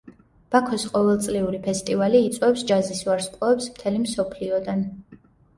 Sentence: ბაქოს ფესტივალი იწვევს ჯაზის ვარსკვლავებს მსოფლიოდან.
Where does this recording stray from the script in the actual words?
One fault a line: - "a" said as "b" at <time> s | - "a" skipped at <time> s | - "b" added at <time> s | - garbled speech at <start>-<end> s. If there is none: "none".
- "ყოველწლიური" added at 0.9 s
- "მთელი" added at 3.7 s